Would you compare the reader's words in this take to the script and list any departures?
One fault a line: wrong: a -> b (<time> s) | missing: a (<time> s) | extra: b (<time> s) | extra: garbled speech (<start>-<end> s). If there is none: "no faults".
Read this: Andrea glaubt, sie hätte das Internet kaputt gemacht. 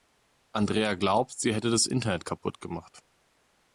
no faults